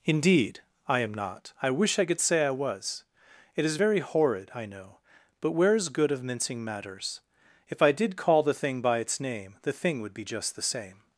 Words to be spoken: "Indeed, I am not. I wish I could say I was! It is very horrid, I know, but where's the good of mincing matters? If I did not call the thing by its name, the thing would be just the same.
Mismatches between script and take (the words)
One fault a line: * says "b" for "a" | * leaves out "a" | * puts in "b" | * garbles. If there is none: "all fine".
* leaves out "the"
* leaves out "not"